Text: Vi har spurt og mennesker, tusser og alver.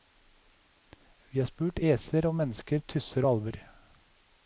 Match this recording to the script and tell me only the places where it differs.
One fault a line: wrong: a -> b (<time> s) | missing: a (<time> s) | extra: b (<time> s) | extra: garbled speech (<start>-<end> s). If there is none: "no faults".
extra: æser (1.9 s)